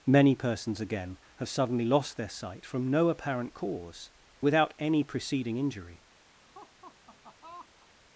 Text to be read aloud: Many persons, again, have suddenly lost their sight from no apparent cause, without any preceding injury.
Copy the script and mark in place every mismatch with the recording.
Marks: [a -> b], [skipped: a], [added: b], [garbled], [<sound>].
Many persons, again, have suddenly lost their sight from no apparent cause, without any preceding injury. [laugh]